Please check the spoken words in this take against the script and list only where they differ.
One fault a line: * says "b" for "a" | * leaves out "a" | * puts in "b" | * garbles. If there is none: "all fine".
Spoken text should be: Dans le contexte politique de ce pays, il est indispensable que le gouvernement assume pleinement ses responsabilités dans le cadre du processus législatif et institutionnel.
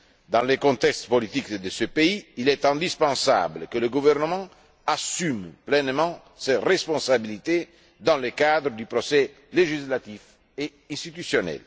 all fine